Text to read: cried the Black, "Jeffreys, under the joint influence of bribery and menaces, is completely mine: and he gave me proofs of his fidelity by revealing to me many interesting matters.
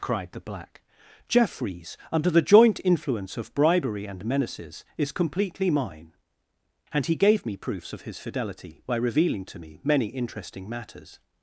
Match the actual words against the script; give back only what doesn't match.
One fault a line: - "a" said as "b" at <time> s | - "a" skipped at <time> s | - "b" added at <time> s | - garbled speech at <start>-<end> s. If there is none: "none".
none